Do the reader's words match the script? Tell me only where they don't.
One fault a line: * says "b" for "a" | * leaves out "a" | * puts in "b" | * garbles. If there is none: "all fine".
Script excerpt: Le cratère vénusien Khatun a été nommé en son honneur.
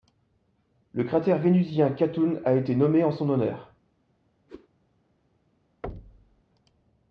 all fine